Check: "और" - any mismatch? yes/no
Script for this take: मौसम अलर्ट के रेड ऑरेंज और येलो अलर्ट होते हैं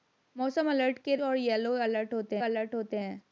yes